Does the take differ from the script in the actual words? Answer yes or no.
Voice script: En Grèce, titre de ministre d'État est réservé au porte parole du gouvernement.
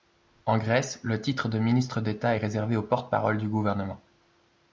yes